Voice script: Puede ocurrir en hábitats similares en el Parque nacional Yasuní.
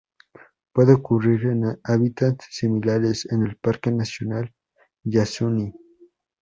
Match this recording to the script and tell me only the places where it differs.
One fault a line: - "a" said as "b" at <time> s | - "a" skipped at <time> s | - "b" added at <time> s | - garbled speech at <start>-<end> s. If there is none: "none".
none